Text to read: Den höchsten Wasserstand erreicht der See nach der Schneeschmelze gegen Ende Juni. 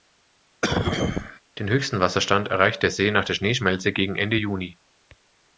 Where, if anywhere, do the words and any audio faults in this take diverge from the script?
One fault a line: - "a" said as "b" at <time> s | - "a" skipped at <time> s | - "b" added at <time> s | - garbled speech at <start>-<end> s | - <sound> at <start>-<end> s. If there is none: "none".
- cough at 0.6-1.4 s